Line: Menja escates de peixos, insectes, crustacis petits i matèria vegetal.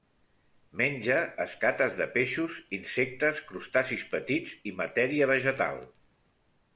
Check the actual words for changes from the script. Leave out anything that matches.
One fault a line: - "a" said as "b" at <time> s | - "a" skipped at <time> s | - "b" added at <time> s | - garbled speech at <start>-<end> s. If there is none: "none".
none